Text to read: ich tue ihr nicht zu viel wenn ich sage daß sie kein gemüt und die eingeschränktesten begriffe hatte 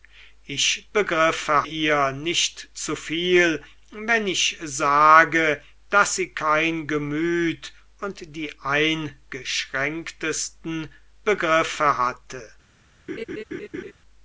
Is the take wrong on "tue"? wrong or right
wrong